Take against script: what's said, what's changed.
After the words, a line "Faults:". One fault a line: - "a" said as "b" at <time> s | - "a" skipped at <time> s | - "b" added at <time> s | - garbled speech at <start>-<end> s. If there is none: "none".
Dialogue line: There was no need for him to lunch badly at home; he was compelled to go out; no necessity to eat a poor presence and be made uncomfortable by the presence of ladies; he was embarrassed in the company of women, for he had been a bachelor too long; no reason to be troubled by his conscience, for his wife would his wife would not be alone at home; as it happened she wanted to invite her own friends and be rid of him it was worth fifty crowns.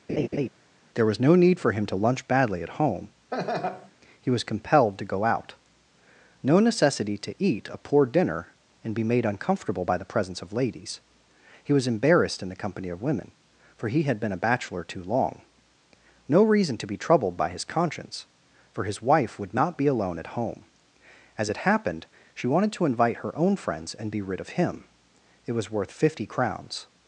There was no need for him to lunch badly at home; he was compelled to go out; no necessity to eat a poor dinner and be made uncomfortable by the presence of ladies; he was embarrassed in the company of women, for he had been a bachelor too long; no reason to be troubled by his conscience, for his wife would not be alone at home; as it happened she wanted to invite her own friends and be rid of him it was worth fifty crowns.
Faults:
- "presence" said as "dinner" at 8.1 s
- "his wife would" skipped at 19.5 s